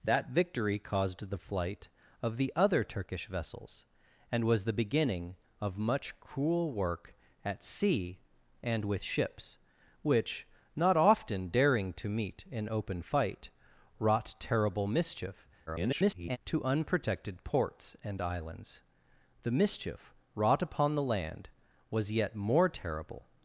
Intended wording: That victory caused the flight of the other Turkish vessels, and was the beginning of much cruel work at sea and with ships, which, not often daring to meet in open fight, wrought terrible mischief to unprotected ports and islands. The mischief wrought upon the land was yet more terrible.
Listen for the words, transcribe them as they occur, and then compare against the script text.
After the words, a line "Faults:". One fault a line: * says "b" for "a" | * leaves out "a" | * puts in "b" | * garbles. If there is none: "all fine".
That victory caused the flight of the other Turkish vessels, and was the beginning of much cruel work at sea and with ships, which, not often daring to meet in open fight, wrought terrible mischief [garbled] to unprotected ports and islands. The mischief wrought upon the land was yet more terrible.
Faults:
* garbles